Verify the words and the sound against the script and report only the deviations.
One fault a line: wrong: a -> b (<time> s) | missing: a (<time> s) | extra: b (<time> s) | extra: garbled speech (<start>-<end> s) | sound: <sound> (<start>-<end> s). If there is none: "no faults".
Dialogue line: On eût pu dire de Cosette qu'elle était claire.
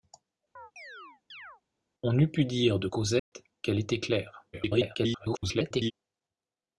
sound: chirp (0.6-1.6 s)
sound: dropout (3.2-3.3 s)
extra: garbled speech (4.5-5.9 s)